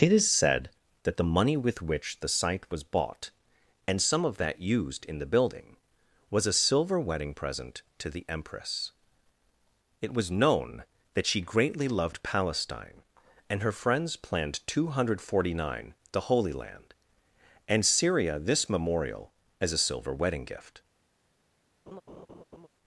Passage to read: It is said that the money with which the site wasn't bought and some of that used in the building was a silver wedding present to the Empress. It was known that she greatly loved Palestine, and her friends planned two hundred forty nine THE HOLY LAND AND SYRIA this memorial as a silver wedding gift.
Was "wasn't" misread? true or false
true